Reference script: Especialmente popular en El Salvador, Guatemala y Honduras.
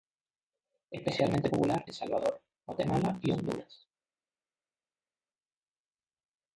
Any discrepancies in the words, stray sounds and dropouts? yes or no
yes